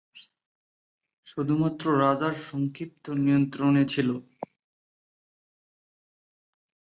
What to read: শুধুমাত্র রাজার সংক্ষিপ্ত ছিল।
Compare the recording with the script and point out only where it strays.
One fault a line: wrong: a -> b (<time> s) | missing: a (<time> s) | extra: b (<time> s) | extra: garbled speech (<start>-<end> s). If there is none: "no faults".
extra: নিয়ন্ত্রণে (3.2 s)